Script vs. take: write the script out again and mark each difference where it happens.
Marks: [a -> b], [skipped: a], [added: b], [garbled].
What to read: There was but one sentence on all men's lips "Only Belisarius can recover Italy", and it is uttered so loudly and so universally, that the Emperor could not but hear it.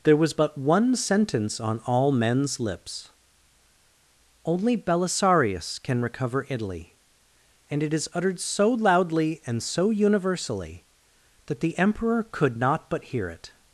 There was but one sentence on all men's lips "Only Belisarius can recover Italy", and it is uttered so loudly and so universally, that the Emperor could not but hear it.